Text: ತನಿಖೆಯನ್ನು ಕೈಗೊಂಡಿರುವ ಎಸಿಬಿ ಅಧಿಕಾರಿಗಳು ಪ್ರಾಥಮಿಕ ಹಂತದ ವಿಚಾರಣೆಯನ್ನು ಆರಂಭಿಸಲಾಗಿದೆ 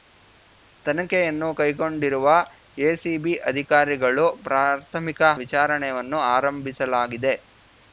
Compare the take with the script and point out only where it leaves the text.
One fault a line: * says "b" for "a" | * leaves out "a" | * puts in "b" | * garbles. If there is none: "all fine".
* leaves out "ಹಂತದ"